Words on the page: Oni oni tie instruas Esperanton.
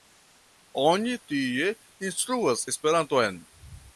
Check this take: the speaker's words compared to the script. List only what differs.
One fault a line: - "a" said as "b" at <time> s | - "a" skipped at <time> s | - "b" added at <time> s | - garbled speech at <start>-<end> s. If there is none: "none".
- "oni" skipped at 1.2 s